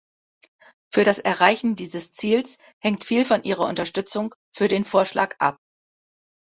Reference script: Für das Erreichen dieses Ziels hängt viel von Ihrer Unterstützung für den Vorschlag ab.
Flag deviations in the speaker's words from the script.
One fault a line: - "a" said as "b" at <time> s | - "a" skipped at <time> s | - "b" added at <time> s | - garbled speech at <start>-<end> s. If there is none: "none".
none